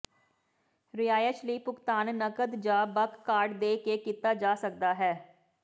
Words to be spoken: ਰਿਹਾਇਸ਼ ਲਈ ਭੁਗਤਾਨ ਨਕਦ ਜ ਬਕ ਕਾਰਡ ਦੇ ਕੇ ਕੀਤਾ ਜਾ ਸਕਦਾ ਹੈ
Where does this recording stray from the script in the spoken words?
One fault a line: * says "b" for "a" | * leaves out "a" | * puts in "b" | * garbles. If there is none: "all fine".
all fine